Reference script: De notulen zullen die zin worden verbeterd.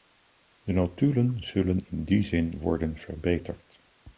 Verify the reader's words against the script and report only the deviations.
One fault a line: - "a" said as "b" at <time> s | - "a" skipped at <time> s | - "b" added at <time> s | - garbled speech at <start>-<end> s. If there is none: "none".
- "in" added at 1.9 s